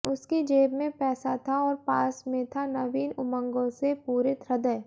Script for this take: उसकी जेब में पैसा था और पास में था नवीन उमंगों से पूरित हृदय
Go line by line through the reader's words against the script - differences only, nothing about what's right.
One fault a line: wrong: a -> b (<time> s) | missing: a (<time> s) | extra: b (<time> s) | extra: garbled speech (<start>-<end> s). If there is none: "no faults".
no faults